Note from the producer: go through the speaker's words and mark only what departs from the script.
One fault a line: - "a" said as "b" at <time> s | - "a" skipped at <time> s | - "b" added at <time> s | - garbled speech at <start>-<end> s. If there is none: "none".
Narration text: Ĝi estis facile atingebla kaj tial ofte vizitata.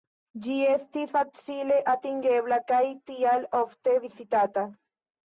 none